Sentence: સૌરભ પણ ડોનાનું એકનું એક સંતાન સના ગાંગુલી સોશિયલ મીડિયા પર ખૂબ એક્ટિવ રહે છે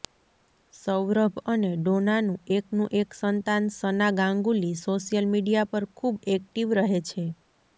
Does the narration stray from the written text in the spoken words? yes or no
yes